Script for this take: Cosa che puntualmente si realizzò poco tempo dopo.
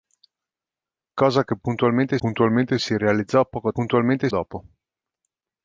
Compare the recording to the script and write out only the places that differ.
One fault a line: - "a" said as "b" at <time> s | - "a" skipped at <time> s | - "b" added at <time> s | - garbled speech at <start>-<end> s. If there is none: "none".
- "puntualmente" added at 2.2 s
- "tempo" said as "puntualmente" at 3.7 s